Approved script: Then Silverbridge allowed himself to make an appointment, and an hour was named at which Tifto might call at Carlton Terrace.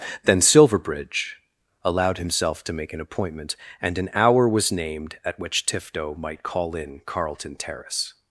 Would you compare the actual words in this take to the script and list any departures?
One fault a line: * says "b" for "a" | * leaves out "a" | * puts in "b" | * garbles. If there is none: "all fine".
* says "in" for "at"